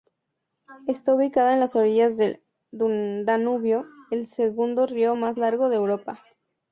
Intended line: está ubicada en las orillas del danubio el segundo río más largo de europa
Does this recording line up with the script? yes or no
yes